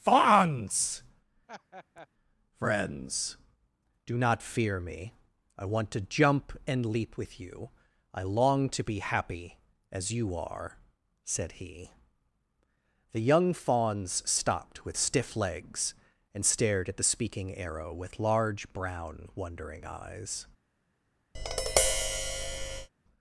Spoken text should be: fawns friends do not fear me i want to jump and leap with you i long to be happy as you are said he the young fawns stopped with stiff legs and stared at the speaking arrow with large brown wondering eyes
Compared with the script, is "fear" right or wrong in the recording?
right